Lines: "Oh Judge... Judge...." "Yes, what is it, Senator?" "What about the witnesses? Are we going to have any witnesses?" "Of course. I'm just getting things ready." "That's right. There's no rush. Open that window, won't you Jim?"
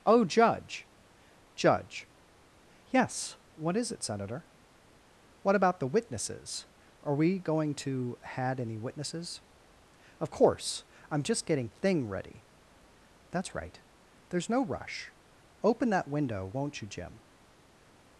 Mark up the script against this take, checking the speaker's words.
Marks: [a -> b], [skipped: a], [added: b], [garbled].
"Oh Judge... Judge...." "Yes, what is it, Senator?" "What about the witnesses? Are we going to [have -> had] any witnesses?" "Of course. I'm just getting [things -> thing] ready." "That's right. There's no rush. Open that window, won't you Jim?"